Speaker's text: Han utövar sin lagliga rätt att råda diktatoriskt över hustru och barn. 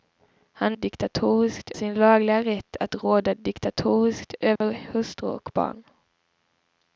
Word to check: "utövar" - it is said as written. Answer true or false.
false